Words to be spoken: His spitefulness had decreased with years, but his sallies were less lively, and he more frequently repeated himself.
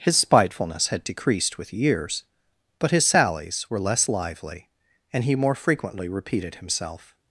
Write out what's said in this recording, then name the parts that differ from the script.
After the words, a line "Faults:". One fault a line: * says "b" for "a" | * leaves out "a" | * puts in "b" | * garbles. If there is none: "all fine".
His spitefulness had decreased with years, but his sallies were less lively, and he more frequently repeated himself.
Faults:
all fine